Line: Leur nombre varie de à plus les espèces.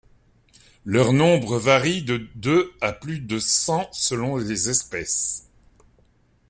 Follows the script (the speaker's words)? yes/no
no